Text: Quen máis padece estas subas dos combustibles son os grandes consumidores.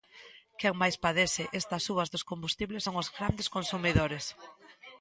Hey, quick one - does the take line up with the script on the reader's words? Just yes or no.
yes